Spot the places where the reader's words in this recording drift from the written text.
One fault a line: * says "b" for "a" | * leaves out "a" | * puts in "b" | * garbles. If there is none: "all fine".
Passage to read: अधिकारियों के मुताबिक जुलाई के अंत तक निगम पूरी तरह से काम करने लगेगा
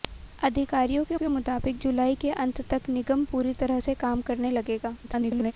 * puts in "के"
* garbles